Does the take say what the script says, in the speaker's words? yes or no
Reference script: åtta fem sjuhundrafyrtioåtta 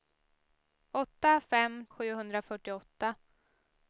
yes